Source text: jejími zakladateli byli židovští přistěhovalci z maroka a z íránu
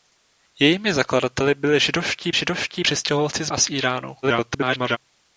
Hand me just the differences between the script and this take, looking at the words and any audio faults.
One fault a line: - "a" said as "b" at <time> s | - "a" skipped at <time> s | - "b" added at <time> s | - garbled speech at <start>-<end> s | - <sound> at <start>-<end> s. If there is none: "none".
- "židovští" added at 2.3 s
- "maroka" skipped at 3.5 s
- garbled speech at 4.2-5.0 s